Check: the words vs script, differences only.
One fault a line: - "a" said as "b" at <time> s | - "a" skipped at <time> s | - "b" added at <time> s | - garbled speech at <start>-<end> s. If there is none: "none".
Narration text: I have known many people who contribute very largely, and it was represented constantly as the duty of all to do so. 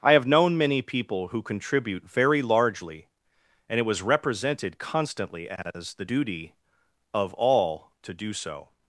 none